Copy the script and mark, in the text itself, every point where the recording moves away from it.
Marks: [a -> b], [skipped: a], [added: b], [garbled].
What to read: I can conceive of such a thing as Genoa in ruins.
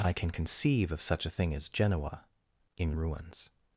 I can conceive of such a thing as Genoa in ruins.